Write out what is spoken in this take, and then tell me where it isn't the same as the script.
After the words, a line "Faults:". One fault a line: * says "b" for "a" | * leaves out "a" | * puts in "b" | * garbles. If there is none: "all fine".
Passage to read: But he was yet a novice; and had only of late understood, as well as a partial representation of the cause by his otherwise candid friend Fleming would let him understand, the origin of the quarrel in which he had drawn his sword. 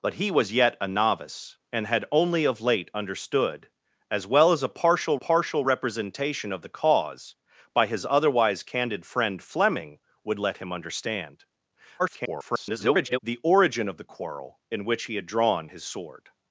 But he was yet a novice; and had only of late understood, as well as a partial partial representation of the cause by his otherwise candid friend Fleming would let him understand, [garbled] the origin of the quarrel in which he had drawn his sword.
Faults:
* puts in "partial"
* garbles